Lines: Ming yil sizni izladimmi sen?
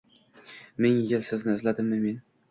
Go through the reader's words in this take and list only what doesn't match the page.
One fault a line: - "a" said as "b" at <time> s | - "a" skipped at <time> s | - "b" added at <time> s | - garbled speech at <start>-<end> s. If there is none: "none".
- "sen" said as "men" at 2.1 s